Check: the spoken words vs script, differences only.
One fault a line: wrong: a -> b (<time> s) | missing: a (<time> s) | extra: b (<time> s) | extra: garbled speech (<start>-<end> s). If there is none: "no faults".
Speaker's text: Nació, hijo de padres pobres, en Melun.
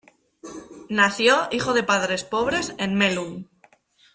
no faults